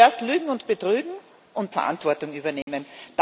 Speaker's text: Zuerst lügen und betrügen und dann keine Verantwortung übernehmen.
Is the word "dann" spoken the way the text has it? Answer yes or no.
no